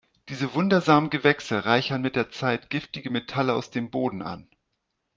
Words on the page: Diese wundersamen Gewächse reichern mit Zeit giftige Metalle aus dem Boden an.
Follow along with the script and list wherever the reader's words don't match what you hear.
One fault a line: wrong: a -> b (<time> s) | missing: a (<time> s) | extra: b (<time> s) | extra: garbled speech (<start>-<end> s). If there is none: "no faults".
extra: der (2.1 s)